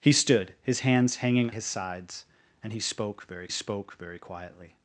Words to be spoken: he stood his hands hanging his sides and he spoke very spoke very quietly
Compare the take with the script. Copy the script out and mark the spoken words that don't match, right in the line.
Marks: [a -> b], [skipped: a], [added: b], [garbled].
he stood his hands hanging his sides and he spoke very spoke very quietly